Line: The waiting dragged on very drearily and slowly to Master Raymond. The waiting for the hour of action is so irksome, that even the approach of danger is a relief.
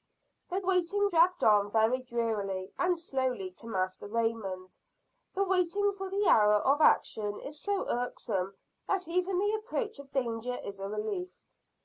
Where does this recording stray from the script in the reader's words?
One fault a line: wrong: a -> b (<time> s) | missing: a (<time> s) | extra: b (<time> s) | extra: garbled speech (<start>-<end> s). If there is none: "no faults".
no faults